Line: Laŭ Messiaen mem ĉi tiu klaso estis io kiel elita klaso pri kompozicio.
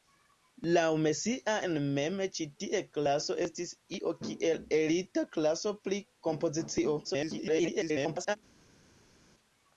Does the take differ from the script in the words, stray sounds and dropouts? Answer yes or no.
yes